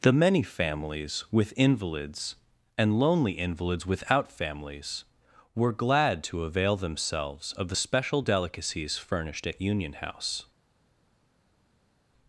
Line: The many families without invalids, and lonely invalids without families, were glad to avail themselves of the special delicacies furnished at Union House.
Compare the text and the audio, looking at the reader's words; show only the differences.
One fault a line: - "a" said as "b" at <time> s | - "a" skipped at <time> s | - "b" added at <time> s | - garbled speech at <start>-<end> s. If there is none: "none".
- "without" said as "with" at 1.3 s